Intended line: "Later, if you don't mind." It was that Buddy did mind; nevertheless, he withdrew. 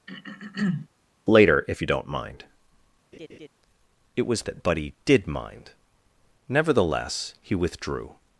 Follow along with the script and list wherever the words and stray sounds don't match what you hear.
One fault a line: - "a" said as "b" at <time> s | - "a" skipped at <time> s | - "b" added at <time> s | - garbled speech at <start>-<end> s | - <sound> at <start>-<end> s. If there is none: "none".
- throat clearing at 0.1-0.9 s
- laugh at 3.1-3.5 s